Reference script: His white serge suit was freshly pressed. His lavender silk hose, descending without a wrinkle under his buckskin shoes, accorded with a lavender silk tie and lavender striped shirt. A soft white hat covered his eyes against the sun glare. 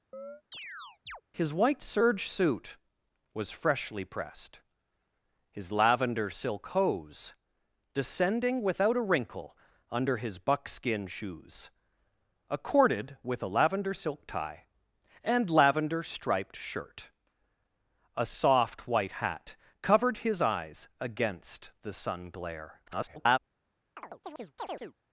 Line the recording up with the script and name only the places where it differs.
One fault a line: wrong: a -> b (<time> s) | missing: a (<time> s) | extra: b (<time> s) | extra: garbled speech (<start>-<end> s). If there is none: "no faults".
extra: garbled speech (22.9-23.4 s)